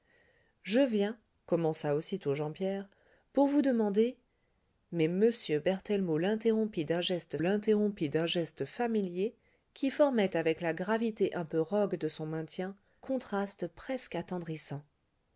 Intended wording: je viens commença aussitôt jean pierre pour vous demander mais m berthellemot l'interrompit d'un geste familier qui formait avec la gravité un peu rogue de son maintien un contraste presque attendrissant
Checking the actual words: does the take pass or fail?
fail